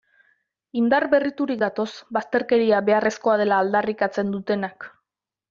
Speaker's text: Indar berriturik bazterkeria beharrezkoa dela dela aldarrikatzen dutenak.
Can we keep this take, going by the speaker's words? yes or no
no